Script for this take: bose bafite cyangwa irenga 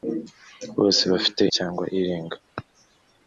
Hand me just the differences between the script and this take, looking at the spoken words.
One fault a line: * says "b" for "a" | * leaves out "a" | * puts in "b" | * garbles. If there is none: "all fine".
all fine